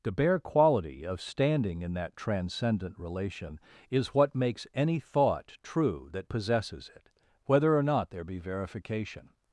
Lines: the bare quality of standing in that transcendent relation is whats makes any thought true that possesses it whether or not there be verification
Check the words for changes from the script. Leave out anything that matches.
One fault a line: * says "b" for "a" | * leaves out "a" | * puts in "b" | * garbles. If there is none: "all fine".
* says "what" for "whats"